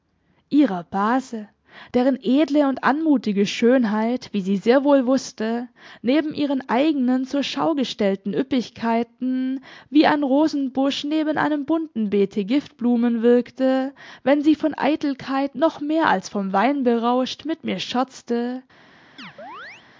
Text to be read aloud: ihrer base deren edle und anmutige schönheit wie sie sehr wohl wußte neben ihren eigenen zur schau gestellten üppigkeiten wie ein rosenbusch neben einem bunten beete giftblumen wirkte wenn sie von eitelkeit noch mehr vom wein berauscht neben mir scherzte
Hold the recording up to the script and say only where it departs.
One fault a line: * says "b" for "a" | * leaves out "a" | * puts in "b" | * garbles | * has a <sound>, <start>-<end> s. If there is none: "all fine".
* puts in "als"
* says "mit" for "neben"
* has a chirp, 19.2-19.9 s